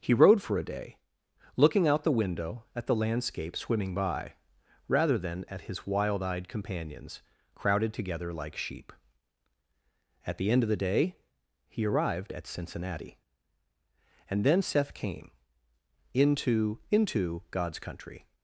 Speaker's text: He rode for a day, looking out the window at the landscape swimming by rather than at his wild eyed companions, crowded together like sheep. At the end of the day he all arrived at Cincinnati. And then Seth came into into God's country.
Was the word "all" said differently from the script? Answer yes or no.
yes